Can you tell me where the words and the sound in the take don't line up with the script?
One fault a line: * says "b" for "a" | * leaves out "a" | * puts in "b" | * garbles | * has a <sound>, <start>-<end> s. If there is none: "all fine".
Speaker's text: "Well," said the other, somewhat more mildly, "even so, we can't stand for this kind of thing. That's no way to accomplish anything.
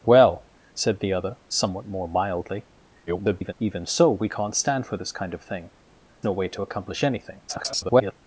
* garbles
* leaves out "That's"
* garbles